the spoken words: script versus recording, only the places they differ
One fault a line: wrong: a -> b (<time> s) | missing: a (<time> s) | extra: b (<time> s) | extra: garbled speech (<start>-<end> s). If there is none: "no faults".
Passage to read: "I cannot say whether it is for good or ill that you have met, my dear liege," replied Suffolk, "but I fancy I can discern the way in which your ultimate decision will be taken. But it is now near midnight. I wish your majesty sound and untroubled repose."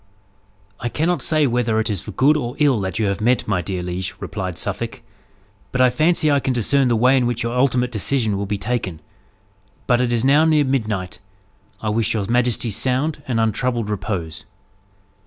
no faults